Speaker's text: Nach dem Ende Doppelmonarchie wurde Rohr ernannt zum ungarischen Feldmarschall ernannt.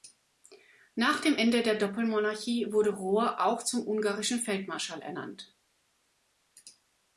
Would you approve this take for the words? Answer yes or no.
no